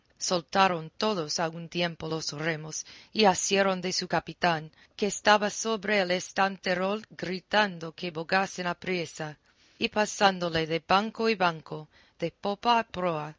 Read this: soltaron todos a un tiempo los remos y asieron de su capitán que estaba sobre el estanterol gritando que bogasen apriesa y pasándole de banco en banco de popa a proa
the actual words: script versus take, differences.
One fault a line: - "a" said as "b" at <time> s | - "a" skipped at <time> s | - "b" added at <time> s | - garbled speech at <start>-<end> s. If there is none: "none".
none